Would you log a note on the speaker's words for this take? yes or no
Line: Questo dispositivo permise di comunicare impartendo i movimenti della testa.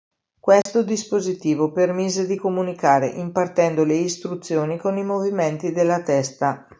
yes